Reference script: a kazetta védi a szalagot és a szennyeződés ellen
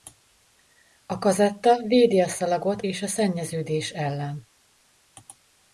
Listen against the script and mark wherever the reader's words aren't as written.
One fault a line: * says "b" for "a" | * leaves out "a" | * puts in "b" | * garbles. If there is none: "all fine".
all fine